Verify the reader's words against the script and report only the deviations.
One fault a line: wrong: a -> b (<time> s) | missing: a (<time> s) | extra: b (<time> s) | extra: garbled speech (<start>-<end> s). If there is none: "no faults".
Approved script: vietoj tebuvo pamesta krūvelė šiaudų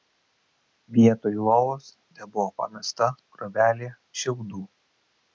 extra: lovos (1.5 s)